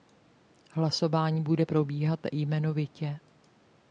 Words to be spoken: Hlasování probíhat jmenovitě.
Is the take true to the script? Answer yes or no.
no